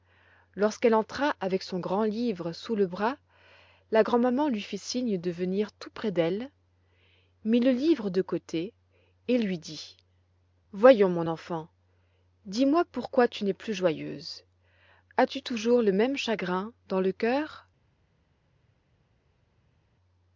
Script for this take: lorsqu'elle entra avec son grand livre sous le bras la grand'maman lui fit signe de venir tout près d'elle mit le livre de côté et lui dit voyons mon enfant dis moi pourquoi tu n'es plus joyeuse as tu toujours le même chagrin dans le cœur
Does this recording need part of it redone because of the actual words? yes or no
no